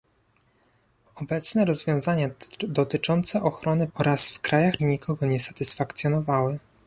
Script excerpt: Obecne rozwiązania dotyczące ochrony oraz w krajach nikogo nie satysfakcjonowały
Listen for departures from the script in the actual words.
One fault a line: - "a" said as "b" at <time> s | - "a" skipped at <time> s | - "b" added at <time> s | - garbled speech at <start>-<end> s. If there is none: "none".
none